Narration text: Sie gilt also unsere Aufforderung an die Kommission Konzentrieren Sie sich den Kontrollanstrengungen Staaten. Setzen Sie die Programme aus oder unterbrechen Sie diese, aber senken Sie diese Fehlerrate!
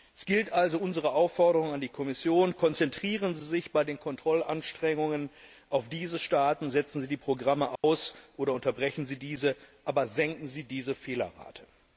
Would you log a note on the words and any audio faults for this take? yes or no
yes